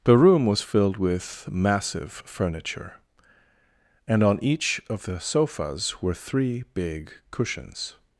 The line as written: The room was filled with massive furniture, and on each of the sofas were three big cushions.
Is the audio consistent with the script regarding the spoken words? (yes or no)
yes